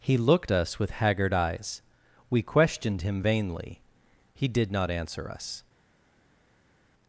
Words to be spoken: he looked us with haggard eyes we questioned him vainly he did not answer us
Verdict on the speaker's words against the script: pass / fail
pass